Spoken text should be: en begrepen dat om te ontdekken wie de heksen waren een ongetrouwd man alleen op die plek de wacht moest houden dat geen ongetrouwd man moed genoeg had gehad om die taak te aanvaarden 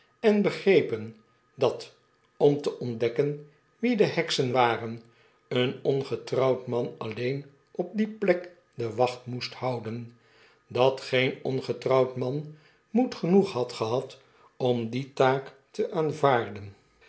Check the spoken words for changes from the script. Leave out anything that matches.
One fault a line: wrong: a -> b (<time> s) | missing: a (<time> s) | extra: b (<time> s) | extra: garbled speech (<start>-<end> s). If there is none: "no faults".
no faults